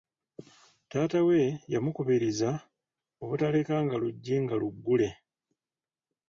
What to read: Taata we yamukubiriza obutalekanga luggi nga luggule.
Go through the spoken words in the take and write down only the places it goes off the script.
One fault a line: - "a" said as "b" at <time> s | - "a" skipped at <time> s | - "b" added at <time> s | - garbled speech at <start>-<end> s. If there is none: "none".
none